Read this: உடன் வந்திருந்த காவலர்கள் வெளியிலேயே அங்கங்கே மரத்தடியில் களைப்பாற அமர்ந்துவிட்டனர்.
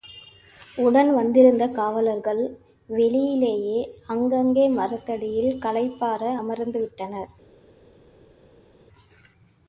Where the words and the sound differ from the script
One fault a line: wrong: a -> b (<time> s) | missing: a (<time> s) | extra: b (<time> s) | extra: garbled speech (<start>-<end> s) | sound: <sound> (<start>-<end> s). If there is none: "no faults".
no faults